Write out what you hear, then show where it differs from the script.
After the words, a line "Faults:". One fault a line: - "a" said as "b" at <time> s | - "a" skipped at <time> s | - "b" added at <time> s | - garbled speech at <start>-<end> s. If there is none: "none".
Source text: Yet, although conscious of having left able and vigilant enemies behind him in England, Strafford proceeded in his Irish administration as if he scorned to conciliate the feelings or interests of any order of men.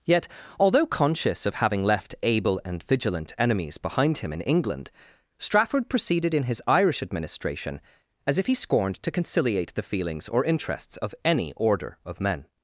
Yet, although conscious of having left able and vigilant enemies behind him in England, Strafford proceeded in his Irish administration as if he scorned to conciliate the feelings or interests of any order of men.
Faults:
none